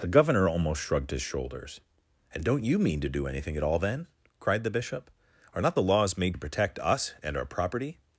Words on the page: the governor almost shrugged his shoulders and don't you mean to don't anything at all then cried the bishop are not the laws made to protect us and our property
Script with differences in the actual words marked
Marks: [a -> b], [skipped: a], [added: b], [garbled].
the governor almost shrugged his shoulders and don't you mean to [don't -> do] anything at all then cried the bishop are not the laws made to protect us and our property